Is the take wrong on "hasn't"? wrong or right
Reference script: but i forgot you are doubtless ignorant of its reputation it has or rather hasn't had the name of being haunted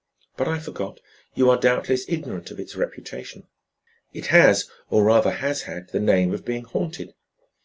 wrong